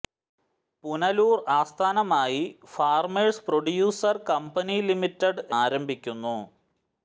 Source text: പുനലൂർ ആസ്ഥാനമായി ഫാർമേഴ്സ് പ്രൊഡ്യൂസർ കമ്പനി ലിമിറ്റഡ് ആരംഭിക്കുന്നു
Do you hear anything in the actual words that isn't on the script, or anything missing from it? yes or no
no